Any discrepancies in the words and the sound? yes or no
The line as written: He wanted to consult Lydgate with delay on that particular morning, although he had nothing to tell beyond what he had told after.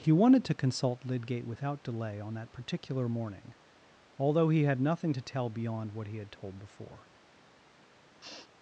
yes